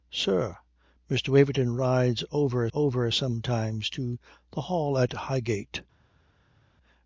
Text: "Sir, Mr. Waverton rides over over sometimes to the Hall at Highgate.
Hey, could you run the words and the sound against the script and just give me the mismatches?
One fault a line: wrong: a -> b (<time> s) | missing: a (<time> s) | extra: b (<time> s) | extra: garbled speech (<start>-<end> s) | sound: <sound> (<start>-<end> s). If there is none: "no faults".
no faults